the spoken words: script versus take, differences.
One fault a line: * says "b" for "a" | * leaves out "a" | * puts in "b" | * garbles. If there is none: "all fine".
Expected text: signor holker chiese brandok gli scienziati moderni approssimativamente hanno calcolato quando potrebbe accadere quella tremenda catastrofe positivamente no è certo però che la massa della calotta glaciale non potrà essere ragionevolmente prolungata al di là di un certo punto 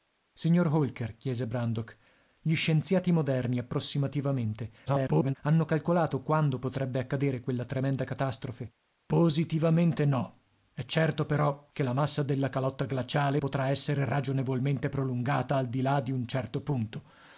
* garbles
* leaves out "non"